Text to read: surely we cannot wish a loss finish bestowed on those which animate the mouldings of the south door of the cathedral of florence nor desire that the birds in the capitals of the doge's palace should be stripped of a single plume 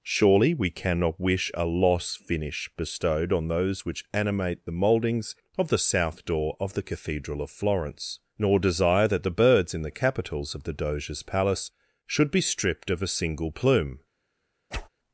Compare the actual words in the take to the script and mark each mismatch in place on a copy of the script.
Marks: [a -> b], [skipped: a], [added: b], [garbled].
surely we cannot wish a loss finish bestowed on those which animate the mouldings of the south door of the cathedral of florence nor desire that the birds in the capitals of the doge's palace should be stripped of a single plume